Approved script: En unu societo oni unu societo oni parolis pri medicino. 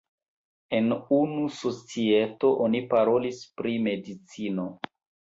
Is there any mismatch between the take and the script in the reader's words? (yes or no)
yes